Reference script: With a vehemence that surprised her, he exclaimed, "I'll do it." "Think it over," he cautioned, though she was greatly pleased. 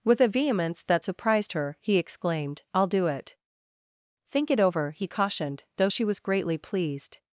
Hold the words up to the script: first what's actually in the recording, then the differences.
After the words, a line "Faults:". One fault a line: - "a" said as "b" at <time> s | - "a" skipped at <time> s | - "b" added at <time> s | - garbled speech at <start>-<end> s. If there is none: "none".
With a vehemence that surprised her, he exclaimed, "I'll do it." "Think it over," he cautioned, though she was greatly pleased.
Faults:
none